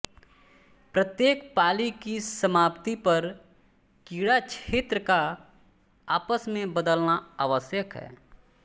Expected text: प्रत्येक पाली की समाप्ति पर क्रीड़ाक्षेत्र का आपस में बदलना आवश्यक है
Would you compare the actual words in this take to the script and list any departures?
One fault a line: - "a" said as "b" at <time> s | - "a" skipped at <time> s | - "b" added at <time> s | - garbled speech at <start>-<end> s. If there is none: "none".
none